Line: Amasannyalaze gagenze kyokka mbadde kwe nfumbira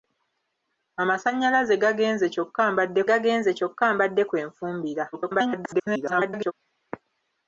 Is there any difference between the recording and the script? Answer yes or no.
yes